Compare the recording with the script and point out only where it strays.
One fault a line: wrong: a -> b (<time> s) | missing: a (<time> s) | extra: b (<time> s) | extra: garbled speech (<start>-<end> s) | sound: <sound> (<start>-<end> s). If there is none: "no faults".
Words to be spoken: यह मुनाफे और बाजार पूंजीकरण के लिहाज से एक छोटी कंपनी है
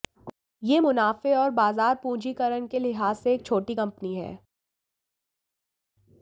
no faults